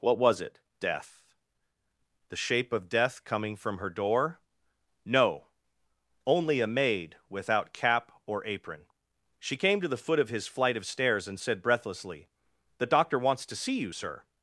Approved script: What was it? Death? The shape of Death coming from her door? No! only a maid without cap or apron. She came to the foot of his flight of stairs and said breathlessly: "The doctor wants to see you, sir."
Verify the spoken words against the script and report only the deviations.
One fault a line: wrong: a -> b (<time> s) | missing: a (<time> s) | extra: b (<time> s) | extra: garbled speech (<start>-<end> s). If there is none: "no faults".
no faults